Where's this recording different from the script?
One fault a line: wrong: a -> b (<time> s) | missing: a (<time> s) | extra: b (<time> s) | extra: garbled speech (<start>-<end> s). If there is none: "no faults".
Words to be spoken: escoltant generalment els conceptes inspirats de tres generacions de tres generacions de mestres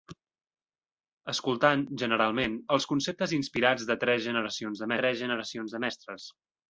no faults